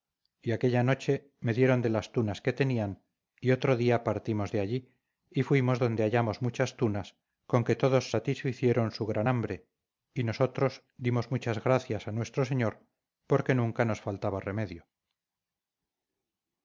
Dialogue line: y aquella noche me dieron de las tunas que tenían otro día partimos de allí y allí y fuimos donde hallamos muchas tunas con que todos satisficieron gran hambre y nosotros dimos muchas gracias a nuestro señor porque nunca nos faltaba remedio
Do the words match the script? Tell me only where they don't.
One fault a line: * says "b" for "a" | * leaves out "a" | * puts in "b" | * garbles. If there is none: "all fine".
* puts in "y"
* leaves out "allí y"
* puts in "su"